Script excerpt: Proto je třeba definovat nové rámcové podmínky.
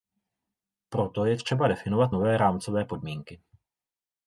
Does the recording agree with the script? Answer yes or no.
yes